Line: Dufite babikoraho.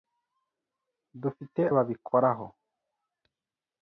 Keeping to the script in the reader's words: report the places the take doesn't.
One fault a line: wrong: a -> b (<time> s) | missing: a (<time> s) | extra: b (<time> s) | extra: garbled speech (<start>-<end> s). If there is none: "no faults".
no faults